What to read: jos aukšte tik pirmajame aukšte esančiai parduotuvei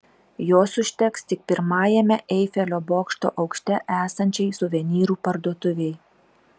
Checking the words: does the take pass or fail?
fail